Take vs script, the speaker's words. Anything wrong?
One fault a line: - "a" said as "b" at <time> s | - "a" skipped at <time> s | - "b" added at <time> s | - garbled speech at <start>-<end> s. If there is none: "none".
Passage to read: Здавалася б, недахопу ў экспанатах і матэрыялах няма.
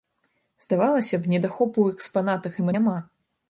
- "матэрыялах" skipped at 2.7 s